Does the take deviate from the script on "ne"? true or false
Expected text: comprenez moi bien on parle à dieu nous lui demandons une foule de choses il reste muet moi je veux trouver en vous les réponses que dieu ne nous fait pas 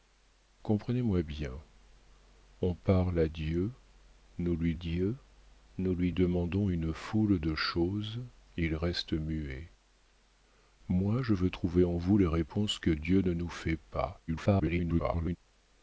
false